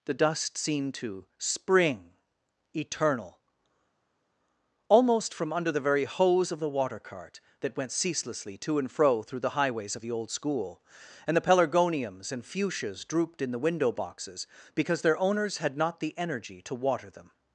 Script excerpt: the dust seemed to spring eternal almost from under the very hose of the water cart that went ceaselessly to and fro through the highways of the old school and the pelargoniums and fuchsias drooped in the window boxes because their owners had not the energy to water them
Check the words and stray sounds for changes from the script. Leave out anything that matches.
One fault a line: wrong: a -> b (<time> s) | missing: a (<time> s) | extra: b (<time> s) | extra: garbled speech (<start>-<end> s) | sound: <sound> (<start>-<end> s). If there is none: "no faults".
no faults